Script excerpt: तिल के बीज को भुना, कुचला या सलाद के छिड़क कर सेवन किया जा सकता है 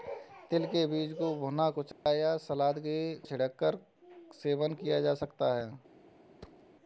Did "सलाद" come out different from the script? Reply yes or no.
no